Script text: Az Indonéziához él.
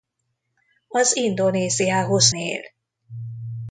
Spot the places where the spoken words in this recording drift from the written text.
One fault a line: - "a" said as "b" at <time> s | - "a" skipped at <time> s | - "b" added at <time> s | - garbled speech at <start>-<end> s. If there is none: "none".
none